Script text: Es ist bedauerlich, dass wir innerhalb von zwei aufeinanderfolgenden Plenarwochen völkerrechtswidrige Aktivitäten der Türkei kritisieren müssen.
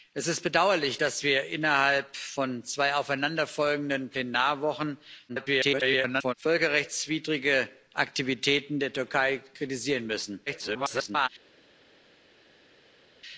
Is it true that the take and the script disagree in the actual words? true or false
true